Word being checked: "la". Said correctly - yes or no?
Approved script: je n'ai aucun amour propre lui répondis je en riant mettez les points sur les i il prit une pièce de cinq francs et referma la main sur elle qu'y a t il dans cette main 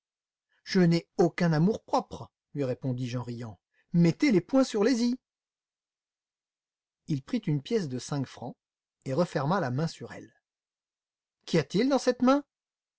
yes